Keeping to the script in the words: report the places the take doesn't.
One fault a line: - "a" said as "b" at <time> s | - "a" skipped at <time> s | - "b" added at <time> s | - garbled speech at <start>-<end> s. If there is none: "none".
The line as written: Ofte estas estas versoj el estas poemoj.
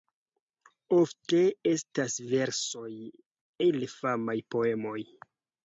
- "estas" skipped at 2.2 s
- "estas" said as "famaj" at 4.0 s